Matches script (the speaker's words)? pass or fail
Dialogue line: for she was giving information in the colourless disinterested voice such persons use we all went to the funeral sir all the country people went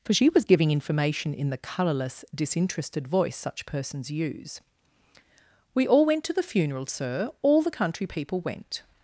pass